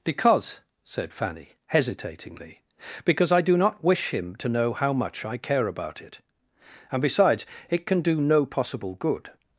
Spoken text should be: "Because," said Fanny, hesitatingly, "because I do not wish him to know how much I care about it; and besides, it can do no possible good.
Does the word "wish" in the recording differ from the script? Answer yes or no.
no